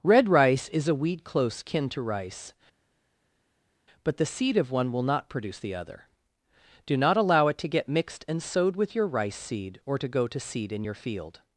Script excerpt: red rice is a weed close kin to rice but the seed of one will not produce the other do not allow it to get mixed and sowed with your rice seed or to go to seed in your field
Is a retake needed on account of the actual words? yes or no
no